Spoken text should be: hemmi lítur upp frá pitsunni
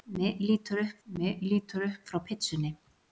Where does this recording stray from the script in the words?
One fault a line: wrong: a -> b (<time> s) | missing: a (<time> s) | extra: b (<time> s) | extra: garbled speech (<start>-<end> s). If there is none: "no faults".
extra: hemmi lítur upp (1.1 s)